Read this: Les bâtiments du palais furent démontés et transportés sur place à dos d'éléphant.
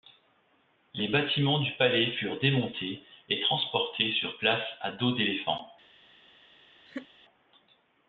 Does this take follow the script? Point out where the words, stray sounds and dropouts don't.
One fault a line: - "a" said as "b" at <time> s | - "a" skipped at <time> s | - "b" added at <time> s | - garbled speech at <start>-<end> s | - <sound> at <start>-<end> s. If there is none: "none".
- laugh at 6.9-7.1 s